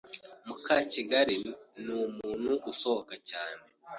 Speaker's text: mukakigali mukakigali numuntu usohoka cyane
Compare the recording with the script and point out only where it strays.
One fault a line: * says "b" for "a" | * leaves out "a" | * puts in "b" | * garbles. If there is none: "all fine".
* leaves out "mukakigali"